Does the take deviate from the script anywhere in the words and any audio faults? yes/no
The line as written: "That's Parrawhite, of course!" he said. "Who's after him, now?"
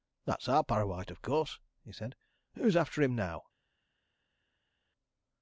yes